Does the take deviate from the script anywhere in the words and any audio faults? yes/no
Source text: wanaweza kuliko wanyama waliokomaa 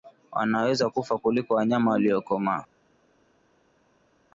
yes